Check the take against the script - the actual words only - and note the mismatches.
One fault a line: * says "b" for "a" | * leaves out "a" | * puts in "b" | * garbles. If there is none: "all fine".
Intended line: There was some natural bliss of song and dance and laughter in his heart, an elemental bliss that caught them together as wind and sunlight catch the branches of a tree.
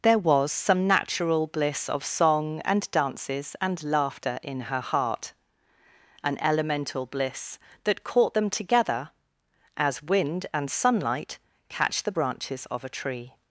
* says "dances" for "dance"
* says "her" for "his"